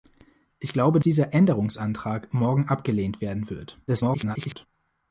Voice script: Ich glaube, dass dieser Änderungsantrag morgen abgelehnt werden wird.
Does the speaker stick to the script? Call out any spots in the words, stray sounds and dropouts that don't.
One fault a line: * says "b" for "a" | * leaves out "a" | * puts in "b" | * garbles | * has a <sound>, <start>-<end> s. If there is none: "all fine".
* leaves out "dass"
* garbles